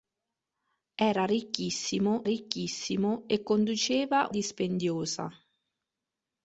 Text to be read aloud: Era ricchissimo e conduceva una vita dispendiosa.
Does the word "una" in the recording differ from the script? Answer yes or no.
yes